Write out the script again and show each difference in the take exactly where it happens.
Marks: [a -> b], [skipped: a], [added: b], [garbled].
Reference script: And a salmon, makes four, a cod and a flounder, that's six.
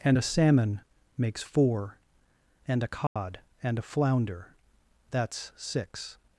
And a salmon, makes four, [added: and] a cod and a flounder, that's six.